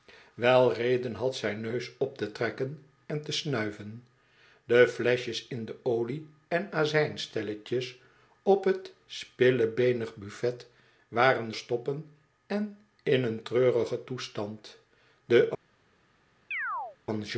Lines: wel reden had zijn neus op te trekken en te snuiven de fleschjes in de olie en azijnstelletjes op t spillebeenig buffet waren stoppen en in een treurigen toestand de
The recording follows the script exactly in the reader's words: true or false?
true